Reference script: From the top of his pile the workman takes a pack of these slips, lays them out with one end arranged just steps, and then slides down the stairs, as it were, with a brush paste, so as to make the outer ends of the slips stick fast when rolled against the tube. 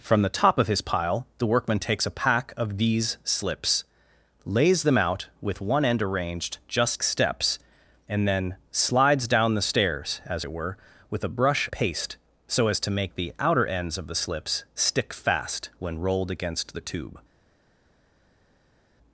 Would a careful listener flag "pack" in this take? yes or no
no